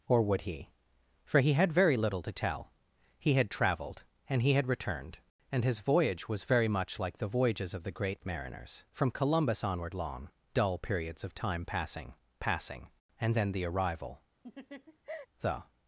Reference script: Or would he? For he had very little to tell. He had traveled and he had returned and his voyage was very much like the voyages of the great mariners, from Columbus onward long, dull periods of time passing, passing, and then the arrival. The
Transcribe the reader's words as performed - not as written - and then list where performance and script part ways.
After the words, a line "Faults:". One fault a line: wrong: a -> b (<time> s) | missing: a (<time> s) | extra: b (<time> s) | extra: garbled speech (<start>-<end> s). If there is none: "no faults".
Or would he? For he had very little to tell. He had traveled and he had returned and his voyage was very much like the voyages of the great mariners, from Columbus onward long, dull periods of time passing, passing, and then the arrival. The
Faults:
no faults